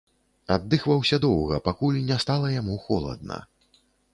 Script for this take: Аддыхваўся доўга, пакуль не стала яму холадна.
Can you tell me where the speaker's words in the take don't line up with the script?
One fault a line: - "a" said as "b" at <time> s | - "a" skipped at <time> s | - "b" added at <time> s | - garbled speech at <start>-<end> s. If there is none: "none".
none